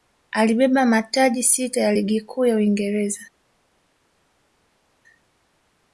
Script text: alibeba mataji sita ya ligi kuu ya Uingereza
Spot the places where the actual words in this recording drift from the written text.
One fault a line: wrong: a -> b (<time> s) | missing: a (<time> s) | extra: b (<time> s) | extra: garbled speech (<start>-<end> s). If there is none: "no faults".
no faults